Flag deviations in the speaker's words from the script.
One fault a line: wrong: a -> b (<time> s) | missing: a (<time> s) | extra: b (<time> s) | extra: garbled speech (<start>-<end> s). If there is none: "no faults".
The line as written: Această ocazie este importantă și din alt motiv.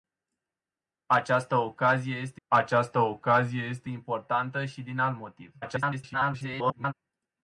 extra: această ocazie este (2.5 s)
extra: garbled speech (5.6-6.9 s)